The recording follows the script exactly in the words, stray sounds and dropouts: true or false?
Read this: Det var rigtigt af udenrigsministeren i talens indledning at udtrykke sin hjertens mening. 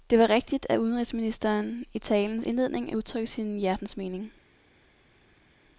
true